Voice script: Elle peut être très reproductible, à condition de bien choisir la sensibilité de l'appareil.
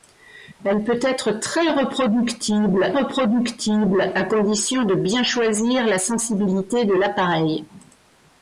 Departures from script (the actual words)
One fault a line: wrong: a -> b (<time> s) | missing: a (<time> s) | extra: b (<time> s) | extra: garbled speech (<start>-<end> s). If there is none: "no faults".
extra: reproductible (2.9 s)